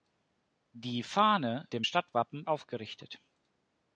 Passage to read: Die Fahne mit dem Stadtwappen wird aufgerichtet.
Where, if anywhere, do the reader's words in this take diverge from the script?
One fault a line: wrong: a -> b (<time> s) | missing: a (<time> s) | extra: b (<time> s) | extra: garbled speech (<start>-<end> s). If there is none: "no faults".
missing: mit (1.7 s)
missing: wird (2.5 s)